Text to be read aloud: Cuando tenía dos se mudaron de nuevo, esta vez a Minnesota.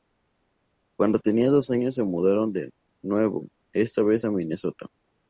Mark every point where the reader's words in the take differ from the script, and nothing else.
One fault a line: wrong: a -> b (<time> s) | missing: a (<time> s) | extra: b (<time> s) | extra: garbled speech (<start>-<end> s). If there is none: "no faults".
extra: años (1.7 s)